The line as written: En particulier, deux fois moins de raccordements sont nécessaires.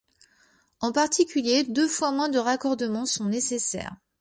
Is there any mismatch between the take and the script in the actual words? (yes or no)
no